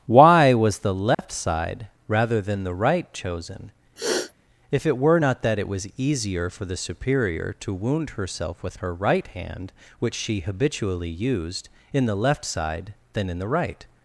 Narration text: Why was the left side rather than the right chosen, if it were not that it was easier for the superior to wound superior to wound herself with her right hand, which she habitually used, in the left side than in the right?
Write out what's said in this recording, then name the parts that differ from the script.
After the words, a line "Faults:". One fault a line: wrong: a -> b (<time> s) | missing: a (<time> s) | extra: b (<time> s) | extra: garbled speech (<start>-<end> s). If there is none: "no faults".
Why was the left side rather than the right chosen, if it were not that it was easier for the superior to wound herself with her right hand, which she habitually used, in the left side than in the right?
Faults:
missing: superior to wound (8.1 s)